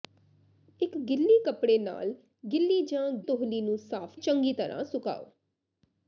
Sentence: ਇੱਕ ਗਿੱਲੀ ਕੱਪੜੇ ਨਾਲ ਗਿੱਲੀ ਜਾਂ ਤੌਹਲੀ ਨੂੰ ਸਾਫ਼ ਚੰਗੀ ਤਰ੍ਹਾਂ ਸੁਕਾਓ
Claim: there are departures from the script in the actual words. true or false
false